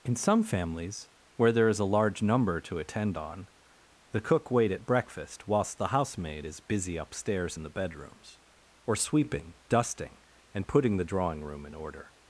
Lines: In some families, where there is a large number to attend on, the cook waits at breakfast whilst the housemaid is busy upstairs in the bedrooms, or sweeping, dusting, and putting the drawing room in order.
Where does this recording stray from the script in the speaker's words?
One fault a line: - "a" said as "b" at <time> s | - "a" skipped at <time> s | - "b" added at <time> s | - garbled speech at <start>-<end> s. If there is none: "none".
- "waits" said as "wait" at 4.5 s